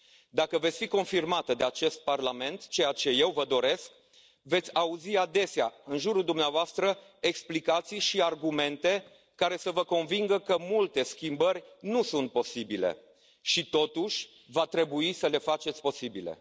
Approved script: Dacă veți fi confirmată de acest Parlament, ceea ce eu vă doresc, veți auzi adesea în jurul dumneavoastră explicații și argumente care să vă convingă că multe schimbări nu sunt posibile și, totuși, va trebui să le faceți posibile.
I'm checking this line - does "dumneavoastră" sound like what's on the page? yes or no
yes